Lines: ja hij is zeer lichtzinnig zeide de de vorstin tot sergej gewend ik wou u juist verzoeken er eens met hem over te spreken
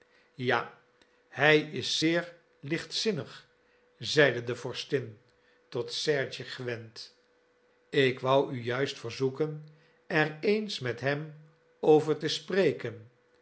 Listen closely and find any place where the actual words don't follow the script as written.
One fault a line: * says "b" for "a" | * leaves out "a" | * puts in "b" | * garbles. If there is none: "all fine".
* leaves out "de"